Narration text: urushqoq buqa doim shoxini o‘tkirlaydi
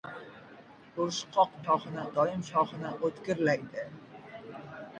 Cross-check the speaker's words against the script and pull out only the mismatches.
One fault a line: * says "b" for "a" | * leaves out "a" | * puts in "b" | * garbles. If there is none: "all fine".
* says "shoxini" for "buqa"